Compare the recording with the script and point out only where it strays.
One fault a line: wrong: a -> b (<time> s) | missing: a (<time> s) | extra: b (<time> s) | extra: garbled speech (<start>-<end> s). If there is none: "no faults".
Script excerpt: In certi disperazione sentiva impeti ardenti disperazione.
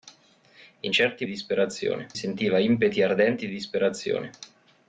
no faults